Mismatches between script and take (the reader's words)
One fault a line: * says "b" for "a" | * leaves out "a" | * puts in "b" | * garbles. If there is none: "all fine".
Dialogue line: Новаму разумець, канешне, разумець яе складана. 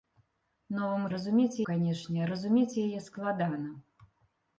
all fine